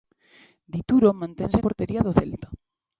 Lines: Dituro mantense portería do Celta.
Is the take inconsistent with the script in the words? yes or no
no